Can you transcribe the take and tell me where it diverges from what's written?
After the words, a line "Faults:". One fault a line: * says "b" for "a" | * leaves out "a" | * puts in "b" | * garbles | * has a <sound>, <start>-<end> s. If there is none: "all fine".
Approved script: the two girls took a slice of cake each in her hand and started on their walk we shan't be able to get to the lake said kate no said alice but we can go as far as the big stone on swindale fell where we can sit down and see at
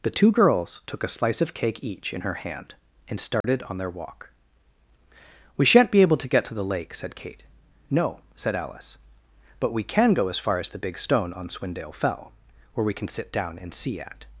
the two girls took a slice of cake each in her hand and started on their walk we shan't be able to get to the lake said kate no said alice but we can go as far as the big stone on swindale fell where we can sit down and see at
Faults:
* has a dropout, 3.4-3.4 s